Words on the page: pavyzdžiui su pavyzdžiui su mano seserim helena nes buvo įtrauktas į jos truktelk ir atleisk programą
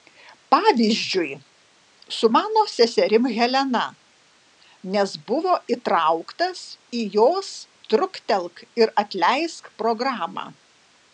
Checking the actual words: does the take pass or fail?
fail